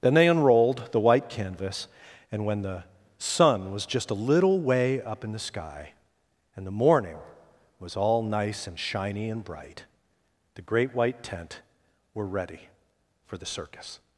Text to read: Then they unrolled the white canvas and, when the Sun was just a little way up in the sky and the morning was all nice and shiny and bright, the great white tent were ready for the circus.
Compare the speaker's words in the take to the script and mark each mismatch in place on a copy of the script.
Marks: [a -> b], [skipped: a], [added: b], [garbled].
Then they unrolled the white canvas and, when the Sun was just a little way up in the sky and the morning was all nice and shiny and bright, the great white tent were ready for the circus.